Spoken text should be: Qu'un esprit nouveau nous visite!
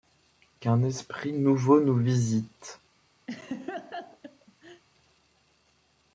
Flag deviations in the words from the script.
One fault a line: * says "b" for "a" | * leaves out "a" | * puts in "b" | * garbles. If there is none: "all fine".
all fine